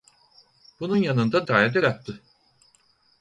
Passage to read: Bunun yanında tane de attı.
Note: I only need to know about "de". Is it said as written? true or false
true